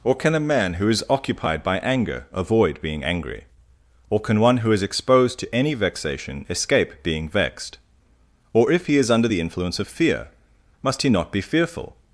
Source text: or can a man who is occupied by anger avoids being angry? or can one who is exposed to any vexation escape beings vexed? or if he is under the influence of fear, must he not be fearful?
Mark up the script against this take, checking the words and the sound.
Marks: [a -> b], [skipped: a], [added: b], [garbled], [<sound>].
or can a man who is occupied by anger [avoids -> avoid] being angry? or can one who is exposed to any vexation escape [beings -> being] vexed? or if he is under the influence of fear, must he not be fearful?